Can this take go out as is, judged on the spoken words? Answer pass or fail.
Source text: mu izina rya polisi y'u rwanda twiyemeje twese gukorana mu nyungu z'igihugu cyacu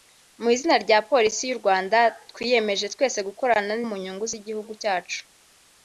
pass